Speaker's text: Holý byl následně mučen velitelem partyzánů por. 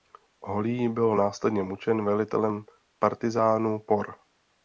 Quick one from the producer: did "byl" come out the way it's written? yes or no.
yes